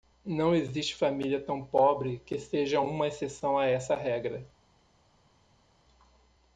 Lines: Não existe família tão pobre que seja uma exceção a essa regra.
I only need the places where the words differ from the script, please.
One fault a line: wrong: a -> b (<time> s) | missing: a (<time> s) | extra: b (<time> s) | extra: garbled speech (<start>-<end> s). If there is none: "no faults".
no faults